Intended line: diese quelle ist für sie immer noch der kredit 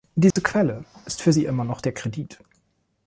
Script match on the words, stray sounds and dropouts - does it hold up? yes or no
no